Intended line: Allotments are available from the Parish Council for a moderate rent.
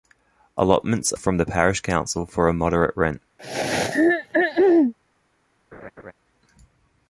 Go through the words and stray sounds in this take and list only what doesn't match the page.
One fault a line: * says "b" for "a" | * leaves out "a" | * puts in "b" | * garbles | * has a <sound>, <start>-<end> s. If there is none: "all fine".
* leaves out "are available"
* has a throat clearing, 3.4-4.9 s
* has a laugh, 5.7-6.1 s